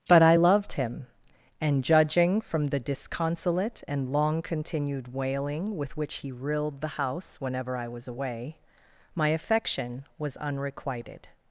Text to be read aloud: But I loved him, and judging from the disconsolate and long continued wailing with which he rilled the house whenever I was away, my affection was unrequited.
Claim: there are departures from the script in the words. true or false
false